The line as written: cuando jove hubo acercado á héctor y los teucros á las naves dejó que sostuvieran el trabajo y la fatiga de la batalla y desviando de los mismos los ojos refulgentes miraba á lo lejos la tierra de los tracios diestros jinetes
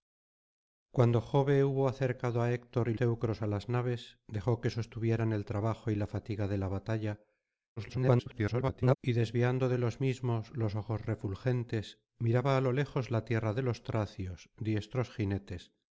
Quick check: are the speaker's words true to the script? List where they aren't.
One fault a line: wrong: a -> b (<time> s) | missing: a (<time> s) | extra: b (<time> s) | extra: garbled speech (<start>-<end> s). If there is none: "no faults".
missing: los (3.0 s)
extra: garbled speech (7.8-9.0 s)